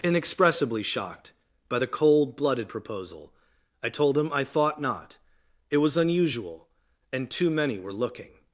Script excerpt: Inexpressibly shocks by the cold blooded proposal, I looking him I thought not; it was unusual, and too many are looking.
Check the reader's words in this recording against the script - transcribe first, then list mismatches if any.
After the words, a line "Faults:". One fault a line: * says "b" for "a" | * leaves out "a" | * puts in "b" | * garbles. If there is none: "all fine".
Inexpressibly shocked by the cold blooded proposal, I told him I thought not; it was unusual, and too many were looking.
Faults:
* says "shocked" for "shocks"
* says "told" for "looking"
* says "were" for "are"